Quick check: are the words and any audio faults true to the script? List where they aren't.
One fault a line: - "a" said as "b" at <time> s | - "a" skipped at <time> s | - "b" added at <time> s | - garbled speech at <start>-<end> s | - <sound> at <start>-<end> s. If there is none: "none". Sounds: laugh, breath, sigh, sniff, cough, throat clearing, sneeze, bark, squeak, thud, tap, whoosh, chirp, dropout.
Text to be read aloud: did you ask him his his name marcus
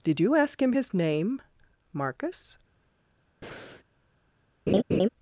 - "his" skipped at 0.9 s
- breath at 3.4-3.8 s
- laugh at 4.7-5.1 s